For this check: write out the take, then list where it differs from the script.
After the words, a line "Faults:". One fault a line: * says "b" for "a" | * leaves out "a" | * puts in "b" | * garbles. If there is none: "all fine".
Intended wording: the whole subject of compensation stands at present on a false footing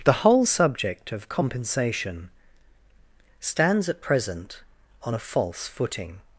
the whole subject of compensation stands at present on a false footing
Faults:
all fine